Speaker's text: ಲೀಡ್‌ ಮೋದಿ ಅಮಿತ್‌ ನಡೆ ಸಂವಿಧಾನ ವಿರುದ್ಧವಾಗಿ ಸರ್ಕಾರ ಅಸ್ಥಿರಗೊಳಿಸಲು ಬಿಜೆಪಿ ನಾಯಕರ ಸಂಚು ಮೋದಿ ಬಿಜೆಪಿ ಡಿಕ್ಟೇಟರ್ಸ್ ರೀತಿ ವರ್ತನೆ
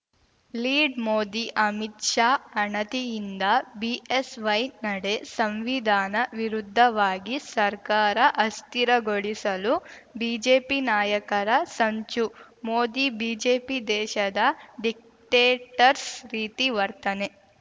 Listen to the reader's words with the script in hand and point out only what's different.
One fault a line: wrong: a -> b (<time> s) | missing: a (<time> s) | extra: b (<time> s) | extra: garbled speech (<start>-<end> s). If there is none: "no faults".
extra: ಶಾ ಅಣತಿಯಿಂದ ಬಿಎಸ್‌ವೈ (2.0 s)
extra: ದೇಶದ (13.9 s)